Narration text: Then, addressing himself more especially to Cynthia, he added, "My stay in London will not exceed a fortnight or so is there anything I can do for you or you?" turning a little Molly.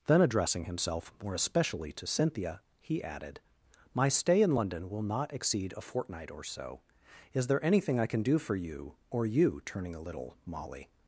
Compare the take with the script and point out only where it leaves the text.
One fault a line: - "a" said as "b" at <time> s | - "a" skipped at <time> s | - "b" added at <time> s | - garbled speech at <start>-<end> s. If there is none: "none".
none